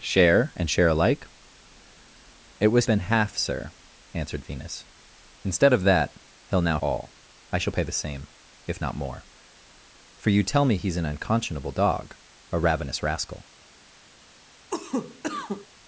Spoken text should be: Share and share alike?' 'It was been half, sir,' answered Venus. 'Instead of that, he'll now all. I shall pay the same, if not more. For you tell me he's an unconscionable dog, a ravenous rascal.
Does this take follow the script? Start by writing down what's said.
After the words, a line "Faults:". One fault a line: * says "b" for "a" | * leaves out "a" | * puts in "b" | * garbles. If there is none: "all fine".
Share and share alike?' 'It was been half, sir,' answered Venus. 'Instead of that, he'll now all. I shall pay the same, if not more. For you tell me he's an unconscionable dog, a ravenous rascal.
Faults:
all fine